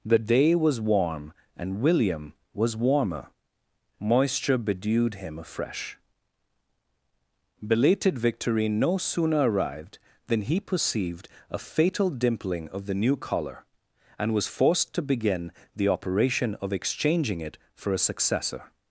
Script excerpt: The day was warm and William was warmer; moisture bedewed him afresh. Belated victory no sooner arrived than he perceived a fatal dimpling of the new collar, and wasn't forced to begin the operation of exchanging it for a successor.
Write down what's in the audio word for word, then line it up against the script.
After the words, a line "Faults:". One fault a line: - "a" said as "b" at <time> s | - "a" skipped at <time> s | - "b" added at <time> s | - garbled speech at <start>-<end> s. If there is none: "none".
The day was warm and William was warmer; moisture bedewed him afresh. Belated victory no sooner arrived than he perceived a fatal dimpling of the new collar, and was forced to begin the operation of exchanging it for a successor.
Faults:
- "wasn't" said as "was" at 14.3 s